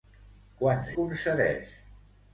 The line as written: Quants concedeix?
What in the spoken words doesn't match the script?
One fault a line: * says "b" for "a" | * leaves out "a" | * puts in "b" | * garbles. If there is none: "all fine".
all fine